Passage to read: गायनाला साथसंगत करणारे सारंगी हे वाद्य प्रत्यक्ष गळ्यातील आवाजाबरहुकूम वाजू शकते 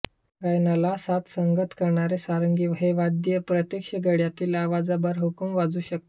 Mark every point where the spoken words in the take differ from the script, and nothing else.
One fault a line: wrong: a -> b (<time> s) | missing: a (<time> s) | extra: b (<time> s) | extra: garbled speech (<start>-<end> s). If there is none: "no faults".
no faults